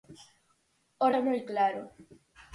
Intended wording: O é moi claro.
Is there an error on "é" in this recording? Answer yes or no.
no